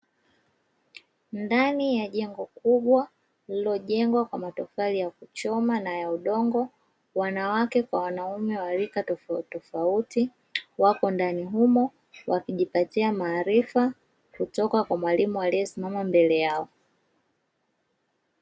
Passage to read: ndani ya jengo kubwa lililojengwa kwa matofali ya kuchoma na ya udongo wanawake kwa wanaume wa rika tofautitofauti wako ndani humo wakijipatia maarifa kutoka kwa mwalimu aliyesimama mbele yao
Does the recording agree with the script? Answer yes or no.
yes